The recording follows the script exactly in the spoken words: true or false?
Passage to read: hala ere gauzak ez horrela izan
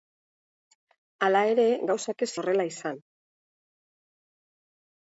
true